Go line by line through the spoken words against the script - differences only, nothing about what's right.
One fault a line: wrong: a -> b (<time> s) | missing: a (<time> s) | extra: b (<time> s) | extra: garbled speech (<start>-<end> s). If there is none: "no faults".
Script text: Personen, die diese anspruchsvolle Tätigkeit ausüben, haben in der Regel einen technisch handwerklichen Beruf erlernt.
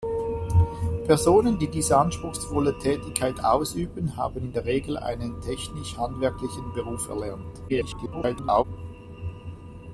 extra: garbled speech (7.7-8.6 s)